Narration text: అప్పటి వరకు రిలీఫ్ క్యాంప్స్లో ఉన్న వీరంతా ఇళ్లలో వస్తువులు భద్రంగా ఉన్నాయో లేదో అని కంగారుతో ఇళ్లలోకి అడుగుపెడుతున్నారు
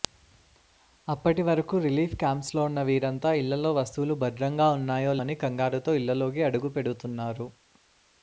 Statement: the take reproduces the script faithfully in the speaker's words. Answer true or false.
false